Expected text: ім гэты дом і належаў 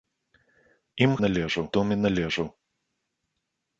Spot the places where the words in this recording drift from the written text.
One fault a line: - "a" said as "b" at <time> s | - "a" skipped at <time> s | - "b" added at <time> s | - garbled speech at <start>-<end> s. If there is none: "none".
- "гэты" said as "належаў" at 1.2 s